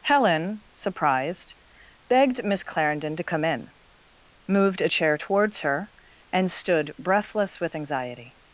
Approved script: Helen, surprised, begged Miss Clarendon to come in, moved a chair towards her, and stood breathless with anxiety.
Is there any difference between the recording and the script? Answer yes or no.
no